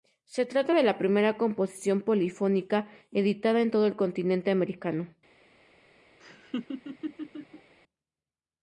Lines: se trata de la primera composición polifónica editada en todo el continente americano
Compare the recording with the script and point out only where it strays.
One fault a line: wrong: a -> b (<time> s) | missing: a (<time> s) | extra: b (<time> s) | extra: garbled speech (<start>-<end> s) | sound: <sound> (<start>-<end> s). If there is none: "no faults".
sound: laugh (6.2-7.7 s)